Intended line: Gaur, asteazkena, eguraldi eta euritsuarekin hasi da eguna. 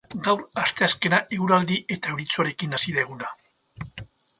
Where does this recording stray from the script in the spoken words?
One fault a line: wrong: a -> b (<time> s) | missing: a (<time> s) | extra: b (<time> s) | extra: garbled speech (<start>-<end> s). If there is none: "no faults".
no faults